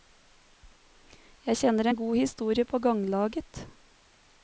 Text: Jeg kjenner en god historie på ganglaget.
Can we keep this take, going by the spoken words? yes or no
yes